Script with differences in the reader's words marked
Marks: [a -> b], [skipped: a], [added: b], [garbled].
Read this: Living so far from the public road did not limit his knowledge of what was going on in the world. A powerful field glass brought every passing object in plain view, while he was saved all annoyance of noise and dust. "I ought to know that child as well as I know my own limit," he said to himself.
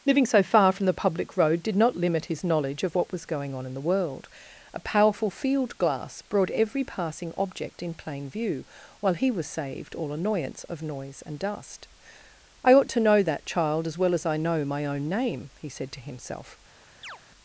Living so far from the public road did not limit his knowledge of what was going on in the world. A powerful field glass brought every passing object in plain view, while he was saved all annoyance of noise and dust. "I ought to know that child as well as I know my own [limit," -> name] he said to himself.